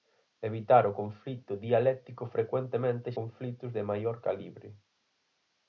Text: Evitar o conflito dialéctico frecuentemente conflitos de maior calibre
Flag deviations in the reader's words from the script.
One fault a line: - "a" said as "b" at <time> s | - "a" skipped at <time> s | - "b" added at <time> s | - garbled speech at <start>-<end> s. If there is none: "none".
none